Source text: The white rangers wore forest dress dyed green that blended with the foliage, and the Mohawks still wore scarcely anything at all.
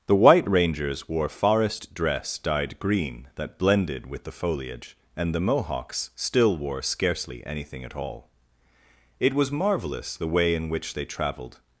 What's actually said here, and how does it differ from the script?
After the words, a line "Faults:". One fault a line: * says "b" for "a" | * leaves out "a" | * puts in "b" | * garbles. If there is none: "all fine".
The white rangers wore forest dress dyed green that blended with the foliage, and the Mohawks still wore scarcely anything at all. It was marvelous the way in which they traveled
Faults:
* puts in "It was marvelous the way in which they traveled"